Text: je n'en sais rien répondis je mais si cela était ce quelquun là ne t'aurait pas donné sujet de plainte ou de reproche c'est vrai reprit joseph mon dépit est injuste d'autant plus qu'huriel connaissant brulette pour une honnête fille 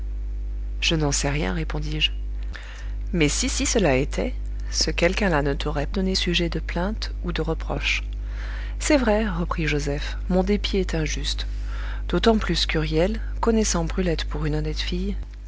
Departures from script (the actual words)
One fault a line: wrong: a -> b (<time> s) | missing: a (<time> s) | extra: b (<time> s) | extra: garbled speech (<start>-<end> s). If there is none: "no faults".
extra: si (3.5 s)
missing: pas (5.9 s)